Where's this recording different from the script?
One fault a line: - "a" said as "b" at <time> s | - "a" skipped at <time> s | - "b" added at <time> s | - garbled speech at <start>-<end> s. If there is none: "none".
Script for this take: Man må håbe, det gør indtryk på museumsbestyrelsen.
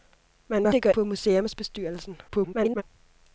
- "håbe" skipped at 0.7 s
- "indtryk" skipped at 0.9 s
- garbled speech at 2.3-2.8 s